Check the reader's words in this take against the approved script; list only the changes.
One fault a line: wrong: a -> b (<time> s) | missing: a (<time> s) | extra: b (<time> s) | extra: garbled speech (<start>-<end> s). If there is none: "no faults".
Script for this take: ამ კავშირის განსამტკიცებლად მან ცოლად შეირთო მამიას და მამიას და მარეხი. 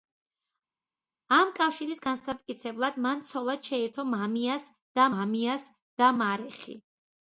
no faults